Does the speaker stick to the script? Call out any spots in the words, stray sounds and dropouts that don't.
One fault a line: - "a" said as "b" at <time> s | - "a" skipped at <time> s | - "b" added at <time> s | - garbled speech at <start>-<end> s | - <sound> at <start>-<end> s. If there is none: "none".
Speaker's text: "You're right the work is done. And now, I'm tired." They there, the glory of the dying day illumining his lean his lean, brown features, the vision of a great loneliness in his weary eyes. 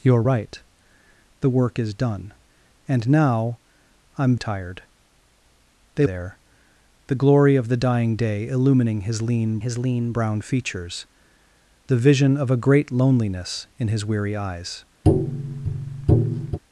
- tap at 15.0-16.6 s